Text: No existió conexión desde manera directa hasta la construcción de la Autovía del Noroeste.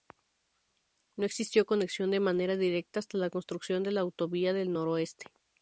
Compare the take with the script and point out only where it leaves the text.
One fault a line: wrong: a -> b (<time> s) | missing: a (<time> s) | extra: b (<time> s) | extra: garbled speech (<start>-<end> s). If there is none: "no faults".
wrong: desde -> de (2.1 s)